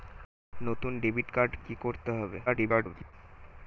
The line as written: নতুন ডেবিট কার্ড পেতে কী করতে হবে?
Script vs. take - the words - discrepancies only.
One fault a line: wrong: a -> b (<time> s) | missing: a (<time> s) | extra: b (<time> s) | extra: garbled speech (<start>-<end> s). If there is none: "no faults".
missing: পেতে (1.5 s)
extra: garbled speech (2.5-3.1 s)